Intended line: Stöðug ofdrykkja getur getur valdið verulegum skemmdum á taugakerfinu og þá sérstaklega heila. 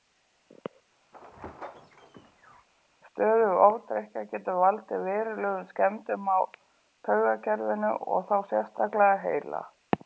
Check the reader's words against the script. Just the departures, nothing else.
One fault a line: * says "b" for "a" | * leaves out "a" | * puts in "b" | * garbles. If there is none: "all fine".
* leaves out "getur"